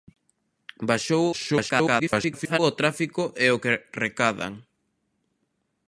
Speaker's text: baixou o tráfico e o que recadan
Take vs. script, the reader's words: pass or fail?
fail